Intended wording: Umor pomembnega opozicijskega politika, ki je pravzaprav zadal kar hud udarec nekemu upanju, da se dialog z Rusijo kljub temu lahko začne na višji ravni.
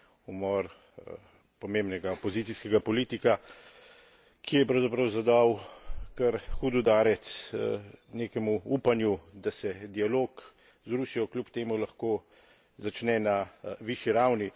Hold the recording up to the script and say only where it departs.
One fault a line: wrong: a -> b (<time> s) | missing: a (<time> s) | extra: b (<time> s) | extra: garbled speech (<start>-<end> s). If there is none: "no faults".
no faults